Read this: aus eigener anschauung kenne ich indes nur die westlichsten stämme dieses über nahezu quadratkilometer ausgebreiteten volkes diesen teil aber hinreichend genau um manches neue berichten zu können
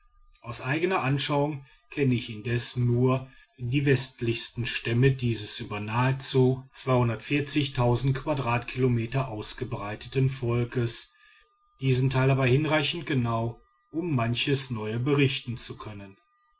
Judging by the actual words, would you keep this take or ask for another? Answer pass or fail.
pass